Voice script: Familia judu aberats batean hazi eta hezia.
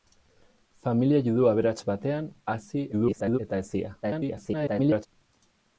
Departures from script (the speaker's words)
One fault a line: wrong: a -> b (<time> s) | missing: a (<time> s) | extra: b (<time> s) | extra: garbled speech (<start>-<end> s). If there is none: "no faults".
extra: garbled speech (2.9-3.4 s)
extra: garbled speech (4.0-5.1 s)